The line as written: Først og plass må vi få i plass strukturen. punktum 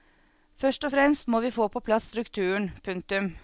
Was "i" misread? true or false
true